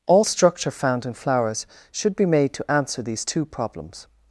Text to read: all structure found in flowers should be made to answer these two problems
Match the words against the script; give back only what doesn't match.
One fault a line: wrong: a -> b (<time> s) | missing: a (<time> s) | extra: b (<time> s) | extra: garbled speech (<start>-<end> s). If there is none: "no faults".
no faults